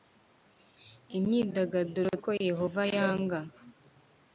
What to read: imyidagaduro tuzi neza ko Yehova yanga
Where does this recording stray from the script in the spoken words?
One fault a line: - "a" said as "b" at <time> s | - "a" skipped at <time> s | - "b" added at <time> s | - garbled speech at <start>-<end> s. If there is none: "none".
- "tuzi neza" skipped at 2.1 s